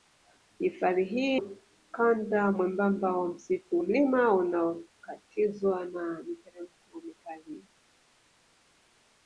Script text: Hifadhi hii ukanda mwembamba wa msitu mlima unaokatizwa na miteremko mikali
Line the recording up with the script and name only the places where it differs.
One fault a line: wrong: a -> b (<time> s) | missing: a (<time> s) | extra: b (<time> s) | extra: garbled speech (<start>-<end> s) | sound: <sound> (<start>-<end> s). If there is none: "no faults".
no faults